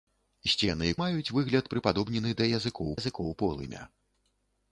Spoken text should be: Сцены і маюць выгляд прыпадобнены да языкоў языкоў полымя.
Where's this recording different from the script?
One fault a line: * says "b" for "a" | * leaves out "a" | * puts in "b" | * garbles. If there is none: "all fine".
all fine